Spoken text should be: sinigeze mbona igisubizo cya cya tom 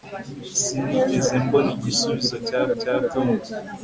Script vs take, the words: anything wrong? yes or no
no